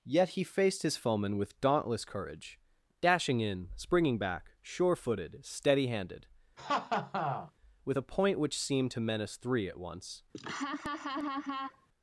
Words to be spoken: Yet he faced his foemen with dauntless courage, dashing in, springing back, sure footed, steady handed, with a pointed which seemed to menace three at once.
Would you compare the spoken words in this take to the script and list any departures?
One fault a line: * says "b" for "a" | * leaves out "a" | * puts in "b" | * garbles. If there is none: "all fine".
* says "point" for "pointed"